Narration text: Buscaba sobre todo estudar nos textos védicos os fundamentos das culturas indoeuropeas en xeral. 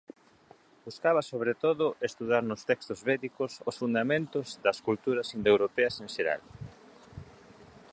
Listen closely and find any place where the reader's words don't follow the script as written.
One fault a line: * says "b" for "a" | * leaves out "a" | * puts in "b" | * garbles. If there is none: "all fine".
all fine